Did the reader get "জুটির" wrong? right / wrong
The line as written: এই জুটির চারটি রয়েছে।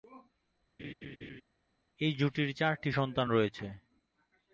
right